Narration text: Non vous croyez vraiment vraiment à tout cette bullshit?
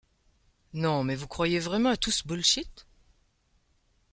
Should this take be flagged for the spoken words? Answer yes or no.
yes